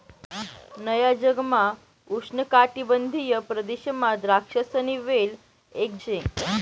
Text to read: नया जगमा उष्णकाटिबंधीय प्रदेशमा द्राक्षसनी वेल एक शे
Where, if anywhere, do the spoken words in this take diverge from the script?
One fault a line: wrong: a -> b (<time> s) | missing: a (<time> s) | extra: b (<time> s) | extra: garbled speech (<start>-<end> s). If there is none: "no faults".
no faults